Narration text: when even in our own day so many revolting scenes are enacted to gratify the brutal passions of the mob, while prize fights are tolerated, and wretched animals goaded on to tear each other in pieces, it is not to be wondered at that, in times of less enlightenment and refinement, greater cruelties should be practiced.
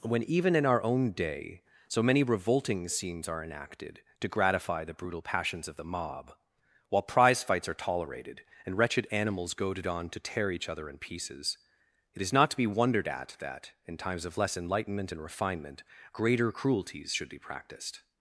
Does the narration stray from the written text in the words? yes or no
no